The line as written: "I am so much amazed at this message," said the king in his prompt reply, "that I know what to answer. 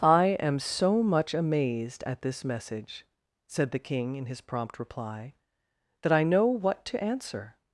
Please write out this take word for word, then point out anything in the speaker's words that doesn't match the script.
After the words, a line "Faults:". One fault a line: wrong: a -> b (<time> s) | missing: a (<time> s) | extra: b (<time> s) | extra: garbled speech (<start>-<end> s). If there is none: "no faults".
"I am so much amazed at this message," said the king in his prompt reply, "that I know what to answer.
Faults:
no faults